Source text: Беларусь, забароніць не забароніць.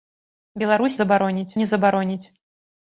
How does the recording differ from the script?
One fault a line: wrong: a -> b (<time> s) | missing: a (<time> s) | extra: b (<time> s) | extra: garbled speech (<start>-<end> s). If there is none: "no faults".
no faults